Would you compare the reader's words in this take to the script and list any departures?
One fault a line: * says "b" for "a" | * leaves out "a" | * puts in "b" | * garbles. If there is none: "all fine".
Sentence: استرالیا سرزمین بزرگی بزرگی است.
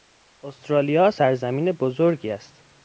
* leaves out "بزرگی"